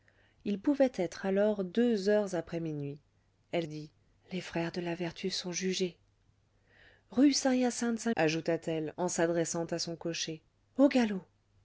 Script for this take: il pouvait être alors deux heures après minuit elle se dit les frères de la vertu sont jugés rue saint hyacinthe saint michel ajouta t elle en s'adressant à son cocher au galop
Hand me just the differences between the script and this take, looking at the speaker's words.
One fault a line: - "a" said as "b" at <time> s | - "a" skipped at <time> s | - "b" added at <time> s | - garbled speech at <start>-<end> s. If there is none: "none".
- "se" skipped at 3.7 s
- "michel" skipped at 8.1 s